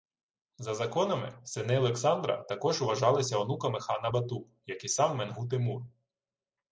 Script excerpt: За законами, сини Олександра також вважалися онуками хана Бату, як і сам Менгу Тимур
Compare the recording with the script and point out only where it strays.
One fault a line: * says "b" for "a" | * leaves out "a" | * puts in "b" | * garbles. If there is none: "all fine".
all fine